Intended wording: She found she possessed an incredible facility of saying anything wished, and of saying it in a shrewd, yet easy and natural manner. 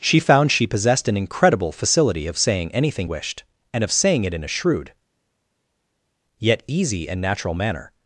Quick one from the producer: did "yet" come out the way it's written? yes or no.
yes